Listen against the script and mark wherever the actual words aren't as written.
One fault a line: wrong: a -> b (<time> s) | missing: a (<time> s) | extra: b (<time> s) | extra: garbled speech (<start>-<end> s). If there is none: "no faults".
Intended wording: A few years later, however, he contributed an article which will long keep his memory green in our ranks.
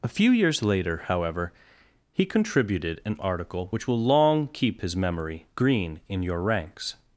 wrong: our -> your (6.2 s)